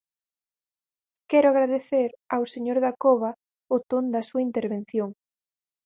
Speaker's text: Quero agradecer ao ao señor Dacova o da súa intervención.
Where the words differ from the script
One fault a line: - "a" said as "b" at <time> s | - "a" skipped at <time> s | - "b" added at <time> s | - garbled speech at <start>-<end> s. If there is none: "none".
- "ao" skipped at 2.4 s
- "ton" added at 3.9 s